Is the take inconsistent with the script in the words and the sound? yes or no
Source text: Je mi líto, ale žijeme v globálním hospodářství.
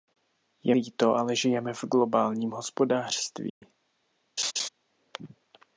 yes